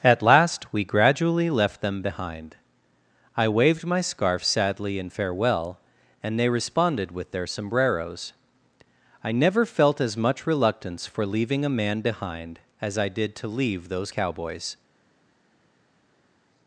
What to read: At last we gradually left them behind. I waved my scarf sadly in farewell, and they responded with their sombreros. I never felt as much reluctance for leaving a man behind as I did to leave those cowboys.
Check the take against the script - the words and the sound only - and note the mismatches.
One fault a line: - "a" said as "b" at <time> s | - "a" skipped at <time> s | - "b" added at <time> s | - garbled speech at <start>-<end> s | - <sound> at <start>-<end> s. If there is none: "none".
none